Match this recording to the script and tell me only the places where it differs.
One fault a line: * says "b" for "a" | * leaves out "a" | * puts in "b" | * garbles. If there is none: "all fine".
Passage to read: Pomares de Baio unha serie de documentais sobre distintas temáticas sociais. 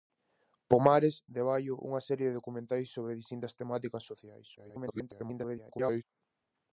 * garbles